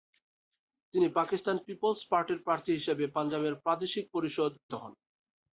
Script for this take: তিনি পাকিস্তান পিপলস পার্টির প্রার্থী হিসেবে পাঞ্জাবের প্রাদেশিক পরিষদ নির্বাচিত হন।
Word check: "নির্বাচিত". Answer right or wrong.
wrong